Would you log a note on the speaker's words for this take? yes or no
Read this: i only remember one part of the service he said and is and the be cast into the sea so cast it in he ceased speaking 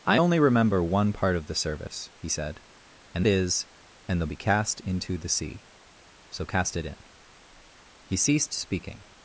no